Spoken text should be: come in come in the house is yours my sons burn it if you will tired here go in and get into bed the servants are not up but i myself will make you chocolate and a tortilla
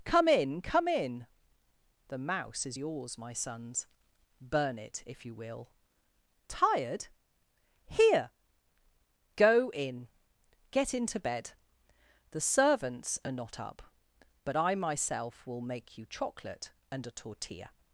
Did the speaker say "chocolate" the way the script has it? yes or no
yes